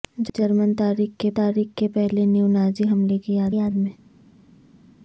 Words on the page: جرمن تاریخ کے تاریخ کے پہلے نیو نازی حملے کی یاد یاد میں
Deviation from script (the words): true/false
false